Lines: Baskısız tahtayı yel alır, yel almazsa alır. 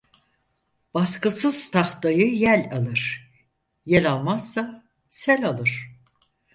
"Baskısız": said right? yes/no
yes